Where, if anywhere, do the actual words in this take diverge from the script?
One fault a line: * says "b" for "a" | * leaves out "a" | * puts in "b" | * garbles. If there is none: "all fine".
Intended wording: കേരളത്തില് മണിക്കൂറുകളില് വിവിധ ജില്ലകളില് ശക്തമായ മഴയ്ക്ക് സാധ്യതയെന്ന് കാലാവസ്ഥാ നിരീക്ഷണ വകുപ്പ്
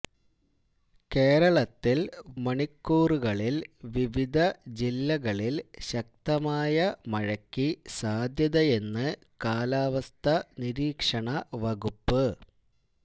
all fine